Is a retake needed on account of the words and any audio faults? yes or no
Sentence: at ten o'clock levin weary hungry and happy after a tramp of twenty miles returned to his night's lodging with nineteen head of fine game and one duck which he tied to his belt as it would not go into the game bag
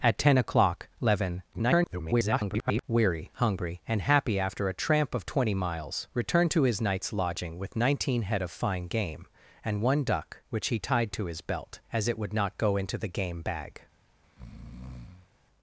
yes